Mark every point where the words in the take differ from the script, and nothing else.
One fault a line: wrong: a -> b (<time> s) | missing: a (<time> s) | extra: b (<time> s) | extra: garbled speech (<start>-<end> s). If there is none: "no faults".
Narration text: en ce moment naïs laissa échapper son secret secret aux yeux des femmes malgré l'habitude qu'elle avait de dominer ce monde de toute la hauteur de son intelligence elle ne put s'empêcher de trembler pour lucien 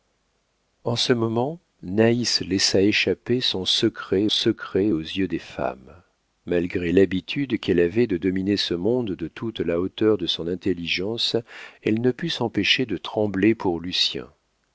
no faults